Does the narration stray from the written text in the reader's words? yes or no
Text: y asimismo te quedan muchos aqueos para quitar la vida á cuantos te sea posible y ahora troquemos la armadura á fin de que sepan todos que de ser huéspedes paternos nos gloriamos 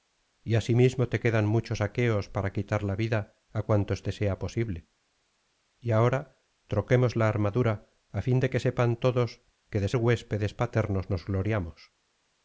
yes